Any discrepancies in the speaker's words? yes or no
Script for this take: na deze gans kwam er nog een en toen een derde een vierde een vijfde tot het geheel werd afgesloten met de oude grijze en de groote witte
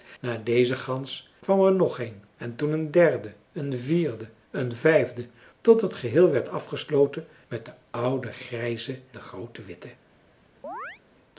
yes